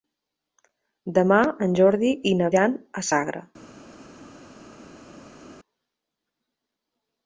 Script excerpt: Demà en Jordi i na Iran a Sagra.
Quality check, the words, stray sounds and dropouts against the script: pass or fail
pass